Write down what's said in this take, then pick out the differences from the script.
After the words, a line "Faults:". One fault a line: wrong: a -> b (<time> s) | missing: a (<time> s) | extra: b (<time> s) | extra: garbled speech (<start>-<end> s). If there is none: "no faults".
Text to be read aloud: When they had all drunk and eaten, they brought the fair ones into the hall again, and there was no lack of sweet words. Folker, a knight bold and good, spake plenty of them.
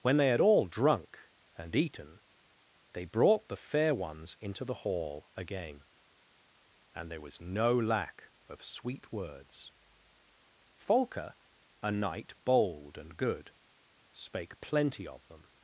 When they had all drunk and eaten, they brought the fair ones into the hall again, and there was no lack of sweet words. Folker, a knight bold and good, spake plenty of them.
Faults:
no faults